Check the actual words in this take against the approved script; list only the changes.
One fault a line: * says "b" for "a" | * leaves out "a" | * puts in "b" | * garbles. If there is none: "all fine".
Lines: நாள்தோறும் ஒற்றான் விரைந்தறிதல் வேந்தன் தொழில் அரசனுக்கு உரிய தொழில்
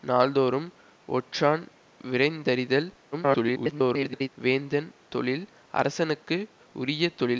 * garbles